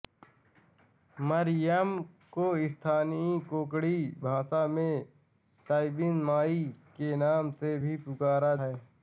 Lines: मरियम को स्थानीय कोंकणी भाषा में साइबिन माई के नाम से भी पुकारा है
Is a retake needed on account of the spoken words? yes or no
no